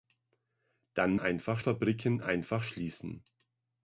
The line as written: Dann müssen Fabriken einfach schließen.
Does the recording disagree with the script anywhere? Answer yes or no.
yes